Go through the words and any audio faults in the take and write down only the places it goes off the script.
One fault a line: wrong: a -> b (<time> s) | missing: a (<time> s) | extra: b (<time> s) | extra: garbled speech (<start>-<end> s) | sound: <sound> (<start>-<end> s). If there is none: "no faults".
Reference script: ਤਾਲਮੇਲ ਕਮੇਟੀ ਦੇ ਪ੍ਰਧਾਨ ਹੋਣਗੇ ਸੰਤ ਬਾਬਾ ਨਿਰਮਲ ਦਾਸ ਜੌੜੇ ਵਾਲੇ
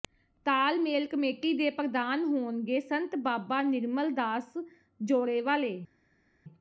no faults